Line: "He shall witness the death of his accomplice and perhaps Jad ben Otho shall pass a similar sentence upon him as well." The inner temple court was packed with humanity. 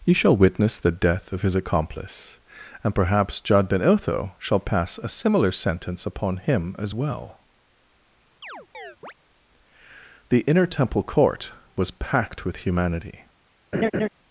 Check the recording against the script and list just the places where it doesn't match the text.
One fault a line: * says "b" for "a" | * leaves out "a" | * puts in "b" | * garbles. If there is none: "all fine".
all fine